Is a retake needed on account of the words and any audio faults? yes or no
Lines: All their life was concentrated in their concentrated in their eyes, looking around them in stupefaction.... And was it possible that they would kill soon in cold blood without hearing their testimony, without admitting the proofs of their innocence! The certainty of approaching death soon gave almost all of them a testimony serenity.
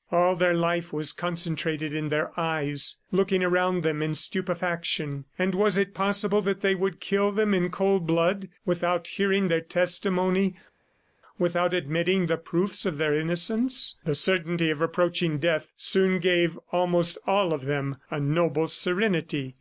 yes